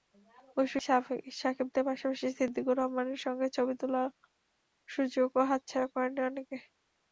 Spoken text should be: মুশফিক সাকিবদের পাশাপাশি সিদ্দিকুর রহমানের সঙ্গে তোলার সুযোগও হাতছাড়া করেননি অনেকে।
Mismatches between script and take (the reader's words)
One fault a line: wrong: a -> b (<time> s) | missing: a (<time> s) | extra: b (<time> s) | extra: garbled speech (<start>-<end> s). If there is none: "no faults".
extra: ছবি (3.5 s)